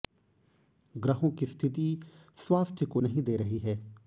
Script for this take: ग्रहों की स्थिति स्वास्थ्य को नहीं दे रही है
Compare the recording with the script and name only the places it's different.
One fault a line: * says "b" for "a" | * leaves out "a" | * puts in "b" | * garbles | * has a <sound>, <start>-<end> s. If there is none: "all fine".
all fine